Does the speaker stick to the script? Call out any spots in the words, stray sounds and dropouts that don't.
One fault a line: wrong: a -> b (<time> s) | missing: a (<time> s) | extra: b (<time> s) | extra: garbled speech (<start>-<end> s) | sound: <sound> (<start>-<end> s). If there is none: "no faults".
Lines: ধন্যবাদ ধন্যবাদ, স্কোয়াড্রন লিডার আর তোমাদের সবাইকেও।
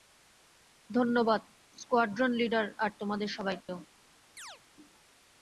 missing: ধন্যবাদ (1.4 s)
sound: dropout (3.6-3.7 s)
sound: chirp (4.4-4.6 s)